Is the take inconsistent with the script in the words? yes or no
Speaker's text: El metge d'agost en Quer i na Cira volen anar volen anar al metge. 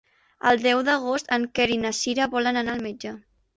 yes